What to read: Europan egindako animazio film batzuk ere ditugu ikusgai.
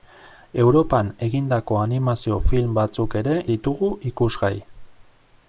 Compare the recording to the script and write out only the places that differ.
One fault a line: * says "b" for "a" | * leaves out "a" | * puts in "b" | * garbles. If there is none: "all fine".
all fine